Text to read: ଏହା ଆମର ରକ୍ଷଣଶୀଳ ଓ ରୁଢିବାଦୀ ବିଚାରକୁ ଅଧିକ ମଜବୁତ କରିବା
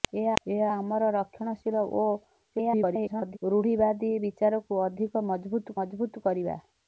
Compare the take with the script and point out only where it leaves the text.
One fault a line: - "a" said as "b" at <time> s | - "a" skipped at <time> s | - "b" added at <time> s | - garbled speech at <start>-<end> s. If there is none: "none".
- "ଏହା" added at 0.4 s
- garbled speech at 2.5-3.4 s
- "ମଜବୁତ" added at 5.8 s